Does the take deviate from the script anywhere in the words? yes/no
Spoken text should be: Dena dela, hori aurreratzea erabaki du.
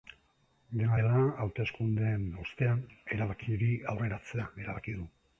yes